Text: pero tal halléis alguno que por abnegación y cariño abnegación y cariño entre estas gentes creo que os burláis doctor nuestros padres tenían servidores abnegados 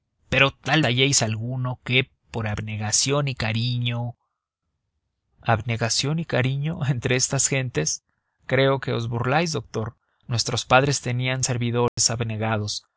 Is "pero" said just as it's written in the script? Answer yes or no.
yes